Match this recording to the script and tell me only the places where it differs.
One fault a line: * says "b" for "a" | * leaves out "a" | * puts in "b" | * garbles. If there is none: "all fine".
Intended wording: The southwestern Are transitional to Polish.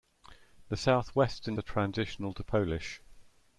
all fine